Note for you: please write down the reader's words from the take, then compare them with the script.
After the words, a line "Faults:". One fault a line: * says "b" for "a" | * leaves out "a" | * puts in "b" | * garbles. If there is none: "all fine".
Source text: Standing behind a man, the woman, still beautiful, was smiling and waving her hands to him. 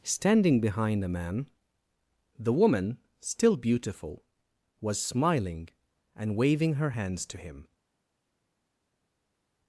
Standing behind a man, the woman, still beautiful, was smiling and waving her hands to him.
Faults:
all fine